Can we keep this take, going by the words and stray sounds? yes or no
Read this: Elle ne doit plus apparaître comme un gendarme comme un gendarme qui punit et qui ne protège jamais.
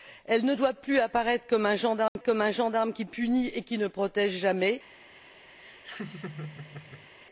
no